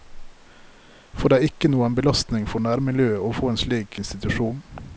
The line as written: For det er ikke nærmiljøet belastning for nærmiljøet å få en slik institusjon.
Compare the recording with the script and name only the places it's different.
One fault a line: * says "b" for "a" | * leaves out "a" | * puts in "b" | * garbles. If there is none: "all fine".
* says "noen" for "nærmiljøet"